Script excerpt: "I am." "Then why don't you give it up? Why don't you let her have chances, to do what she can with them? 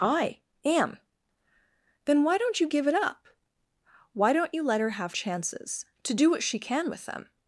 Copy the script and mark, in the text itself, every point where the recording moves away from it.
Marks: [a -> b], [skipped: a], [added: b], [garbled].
"I am." "Then why don't you give it up? Why don't you let her have chances, to do what she can with them?